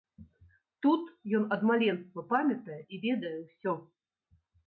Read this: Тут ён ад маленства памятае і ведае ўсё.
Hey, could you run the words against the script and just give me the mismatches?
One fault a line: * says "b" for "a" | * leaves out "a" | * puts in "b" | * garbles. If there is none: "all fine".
all fine